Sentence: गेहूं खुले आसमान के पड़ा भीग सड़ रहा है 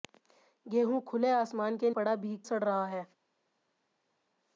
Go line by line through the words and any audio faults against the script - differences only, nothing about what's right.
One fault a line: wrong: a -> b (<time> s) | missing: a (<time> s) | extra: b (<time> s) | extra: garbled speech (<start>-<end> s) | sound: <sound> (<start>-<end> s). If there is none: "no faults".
no faults